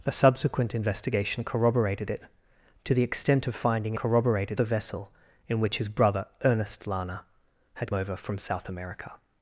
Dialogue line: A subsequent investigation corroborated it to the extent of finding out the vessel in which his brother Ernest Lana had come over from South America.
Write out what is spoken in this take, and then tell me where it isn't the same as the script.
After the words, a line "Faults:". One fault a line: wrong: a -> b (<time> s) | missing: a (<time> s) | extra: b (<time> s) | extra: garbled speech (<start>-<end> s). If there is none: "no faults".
A subsequent investigation corroborated it to the extent of finding corroborated the vessel in which his brother Ernest Lana had over from South America.
Faults:
wrong: out -> corroborated (3.9 s)
missing: come (7.9 s)